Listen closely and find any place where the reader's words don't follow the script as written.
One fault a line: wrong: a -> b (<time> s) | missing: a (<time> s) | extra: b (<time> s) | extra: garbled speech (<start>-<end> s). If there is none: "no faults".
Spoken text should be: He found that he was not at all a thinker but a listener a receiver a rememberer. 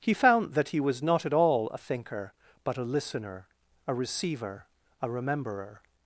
no faults